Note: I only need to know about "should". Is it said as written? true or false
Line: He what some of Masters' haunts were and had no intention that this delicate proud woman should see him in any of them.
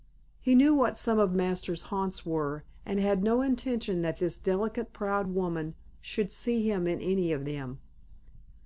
true